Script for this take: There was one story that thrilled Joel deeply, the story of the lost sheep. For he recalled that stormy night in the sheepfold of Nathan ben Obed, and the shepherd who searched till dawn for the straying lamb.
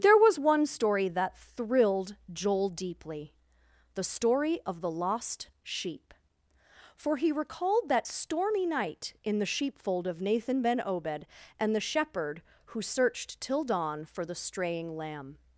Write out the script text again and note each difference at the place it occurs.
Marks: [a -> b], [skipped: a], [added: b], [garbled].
There was one story that thrilled Joel deeply, the story of the lost sheep. For he recalled that stormy night in the sheepfold of Nathan ben Obed, and the shepherd who searched till dawn for the straying lamb.